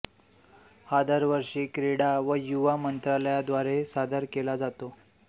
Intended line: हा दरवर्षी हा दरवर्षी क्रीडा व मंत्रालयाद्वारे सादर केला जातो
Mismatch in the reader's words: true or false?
true